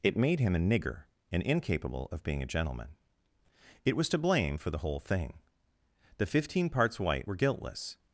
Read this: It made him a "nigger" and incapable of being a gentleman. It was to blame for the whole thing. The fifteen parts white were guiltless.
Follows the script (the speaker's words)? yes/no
yes